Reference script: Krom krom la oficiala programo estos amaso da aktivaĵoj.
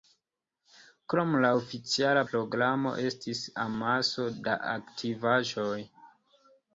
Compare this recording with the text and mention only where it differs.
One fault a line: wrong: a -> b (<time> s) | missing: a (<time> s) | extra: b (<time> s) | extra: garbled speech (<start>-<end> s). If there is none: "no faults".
missing: krom (1.4 s)
wrong: estos -> estis (3.1 s)